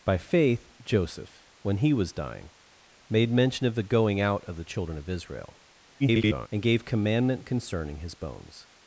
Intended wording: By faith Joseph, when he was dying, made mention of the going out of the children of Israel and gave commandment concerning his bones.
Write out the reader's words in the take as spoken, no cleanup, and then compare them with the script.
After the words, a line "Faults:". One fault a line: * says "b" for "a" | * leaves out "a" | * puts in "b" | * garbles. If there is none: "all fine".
By faith Joseph, when he was dying, made mention of the going out of the children of Israel [garbled] and gave commandment concerning his bones.
Faults:
* garbles